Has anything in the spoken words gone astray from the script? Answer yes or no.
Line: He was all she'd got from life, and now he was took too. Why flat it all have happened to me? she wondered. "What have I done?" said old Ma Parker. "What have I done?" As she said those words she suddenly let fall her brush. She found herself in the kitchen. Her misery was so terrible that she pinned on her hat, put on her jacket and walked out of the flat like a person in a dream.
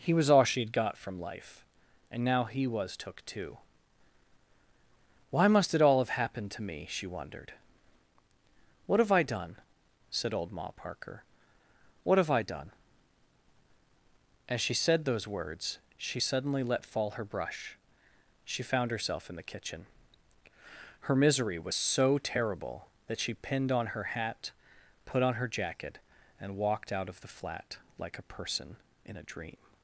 yes